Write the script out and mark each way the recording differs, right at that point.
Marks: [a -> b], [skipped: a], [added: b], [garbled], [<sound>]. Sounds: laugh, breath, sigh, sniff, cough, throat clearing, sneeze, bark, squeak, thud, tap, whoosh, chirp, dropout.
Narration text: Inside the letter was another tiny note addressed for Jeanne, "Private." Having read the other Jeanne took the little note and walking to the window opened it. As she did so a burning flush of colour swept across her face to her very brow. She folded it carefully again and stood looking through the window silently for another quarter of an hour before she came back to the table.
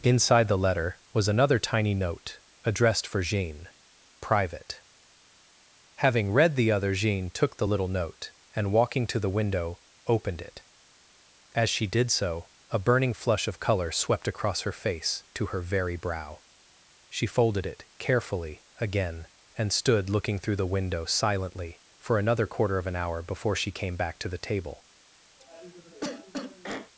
Inside the letter was another tiny note addressed for Jeanne, "Private." Having read the other Jeanne took the little note and walking to the window opened it. As she did so a burning flush of colour swept across her face to her very brow. She folded it carefully again and stood looking through the window silently for another quarter of an hour before she came back to the table. [cough]